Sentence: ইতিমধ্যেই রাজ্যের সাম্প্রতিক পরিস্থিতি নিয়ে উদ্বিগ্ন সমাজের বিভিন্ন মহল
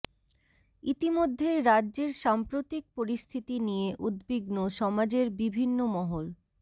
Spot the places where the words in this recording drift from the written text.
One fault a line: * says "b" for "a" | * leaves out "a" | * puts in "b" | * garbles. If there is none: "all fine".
all fine